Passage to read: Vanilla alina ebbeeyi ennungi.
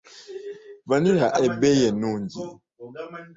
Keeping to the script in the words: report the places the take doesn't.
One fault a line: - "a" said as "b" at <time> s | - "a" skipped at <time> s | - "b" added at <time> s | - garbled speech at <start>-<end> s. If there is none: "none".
- "alina" skipped at 1.3 s